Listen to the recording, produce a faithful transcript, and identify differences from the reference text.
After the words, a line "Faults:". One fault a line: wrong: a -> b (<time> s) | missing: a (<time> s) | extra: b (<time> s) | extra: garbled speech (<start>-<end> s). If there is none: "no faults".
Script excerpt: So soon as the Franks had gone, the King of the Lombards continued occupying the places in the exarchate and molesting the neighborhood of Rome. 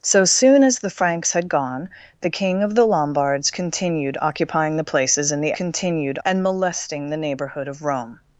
So soon as the Franks had gone, the King of the Lombards continued occupying the places in the continued and molesting the neighborhood of Rome.
Faults:
wrong: exarchate -> continued (5.5 s)